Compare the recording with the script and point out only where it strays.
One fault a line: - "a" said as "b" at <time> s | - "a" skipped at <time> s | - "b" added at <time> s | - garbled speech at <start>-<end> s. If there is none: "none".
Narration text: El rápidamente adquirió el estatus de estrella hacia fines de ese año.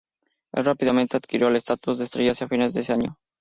none